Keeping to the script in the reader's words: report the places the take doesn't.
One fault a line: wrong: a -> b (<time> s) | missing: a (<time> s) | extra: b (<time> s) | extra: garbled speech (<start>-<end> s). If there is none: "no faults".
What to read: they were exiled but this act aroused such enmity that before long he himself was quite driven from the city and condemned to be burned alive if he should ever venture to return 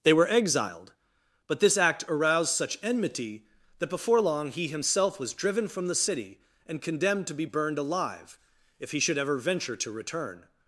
missing: quite (5.3 s)